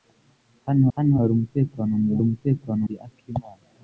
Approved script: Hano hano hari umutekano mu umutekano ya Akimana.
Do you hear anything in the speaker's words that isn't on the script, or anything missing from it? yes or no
no